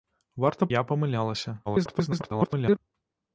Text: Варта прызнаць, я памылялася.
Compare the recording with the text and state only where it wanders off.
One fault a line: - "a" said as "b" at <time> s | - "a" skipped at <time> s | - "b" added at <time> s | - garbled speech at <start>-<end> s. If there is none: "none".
- "прызнаць" skipped at 0.7 s
- garbled speech at 1.7-2.8 s